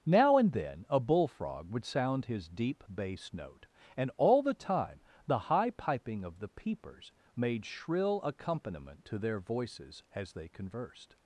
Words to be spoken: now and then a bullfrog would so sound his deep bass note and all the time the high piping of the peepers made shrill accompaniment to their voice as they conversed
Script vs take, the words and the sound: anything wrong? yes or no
yes